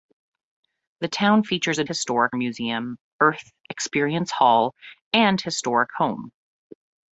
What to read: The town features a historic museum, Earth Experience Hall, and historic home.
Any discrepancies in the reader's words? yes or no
no